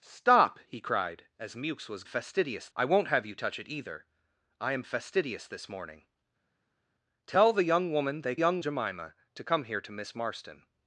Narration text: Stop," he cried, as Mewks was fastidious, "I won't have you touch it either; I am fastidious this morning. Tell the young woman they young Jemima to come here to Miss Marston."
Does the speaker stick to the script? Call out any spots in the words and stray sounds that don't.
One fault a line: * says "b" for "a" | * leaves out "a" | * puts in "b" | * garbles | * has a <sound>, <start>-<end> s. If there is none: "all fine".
all fine